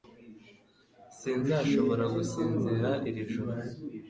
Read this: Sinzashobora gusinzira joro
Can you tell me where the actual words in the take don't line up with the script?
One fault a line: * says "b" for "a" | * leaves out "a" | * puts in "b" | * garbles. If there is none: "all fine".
* puts in "iri"